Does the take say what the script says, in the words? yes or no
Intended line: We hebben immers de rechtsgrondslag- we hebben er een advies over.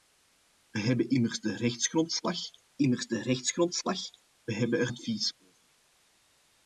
no